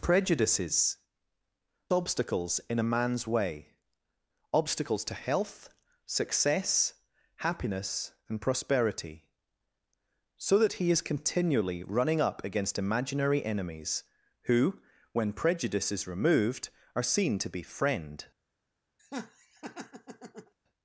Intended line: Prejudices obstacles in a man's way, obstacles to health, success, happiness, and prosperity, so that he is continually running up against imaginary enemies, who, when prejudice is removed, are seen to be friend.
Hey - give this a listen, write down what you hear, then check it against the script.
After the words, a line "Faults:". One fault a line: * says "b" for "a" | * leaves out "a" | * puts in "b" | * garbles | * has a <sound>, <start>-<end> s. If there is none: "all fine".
Prejudices obstacles in a man's way, obstacles to health, success, happiness, and prosperity, so that he is continually running up against imaginary enemies, who, when prejudice is removed, are seen to be friend.
Faults:
* has a laugh, 19.0-20.5 s